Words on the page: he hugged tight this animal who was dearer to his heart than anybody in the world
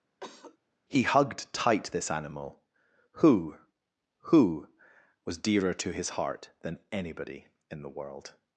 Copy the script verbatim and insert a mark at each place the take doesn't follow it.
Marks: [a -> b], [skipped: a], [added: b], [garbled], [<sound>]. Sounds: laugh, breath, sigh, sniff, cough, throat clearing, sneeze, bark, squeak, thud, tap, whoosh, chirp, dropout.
[cough] he hugged tight this animal who [added: who] was dearer to his heart than anybody in the world